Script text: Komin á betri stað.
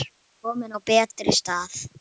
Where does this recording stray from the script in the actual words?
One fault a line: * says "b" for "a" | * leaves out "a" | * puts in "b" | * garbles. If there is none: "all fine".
all fine